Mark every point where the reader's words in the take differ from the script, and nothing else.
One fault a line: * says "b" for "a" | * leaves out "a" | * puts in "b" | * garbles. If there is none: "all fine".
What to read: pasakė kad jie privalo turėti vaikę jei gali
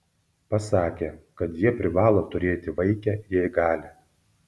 all fine